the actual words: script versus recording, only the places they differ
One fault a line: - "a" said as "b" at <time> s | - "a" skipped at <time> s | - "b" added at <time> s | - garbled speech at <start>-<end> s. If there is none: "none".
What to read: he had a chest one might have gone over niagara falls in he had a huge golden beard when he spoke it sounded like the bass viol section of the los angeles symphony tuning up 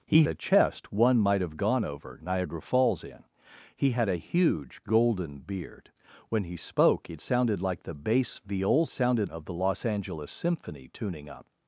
- "had" skipped at 0.2 s
- "section" said as "sounded" at 8.9 s